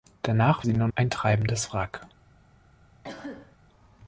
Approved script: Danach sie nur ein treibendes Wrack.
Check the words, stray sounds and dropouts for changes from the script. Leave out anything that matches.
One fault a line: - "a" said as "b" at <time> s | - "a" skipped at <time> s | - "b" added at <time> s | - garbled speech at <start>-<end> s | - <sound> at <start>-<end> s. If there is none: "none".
- cough at 3.0-3.6 s